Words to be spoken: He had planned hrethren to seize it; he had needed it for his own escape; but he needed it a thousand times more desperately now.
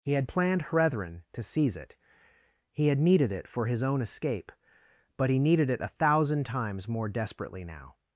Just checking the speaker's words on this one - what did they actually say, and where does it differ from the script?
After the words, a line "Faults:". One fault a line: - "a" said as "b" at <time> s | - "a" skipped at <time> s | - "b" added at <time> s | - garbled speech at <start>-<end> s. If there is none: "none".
He had planned hrethren to seize it; he had needed it for his own escape; but he needed it a thousand times more desperately now.
Faults:
none